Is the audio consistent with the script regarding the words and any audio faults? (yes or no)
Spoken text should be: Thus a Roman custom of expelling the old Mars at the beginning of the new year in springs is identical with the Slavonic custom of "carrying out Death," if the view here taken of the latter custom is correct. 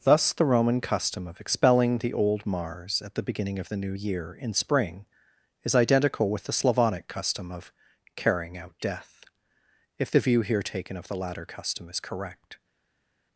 no